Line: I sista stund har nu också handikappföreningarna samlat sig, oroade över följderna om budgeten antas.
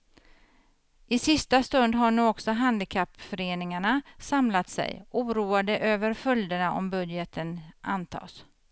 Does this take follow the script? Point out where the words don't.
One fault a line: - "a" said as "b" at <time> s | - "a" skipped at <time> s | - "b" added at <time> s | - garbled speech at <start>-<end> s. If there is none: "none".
none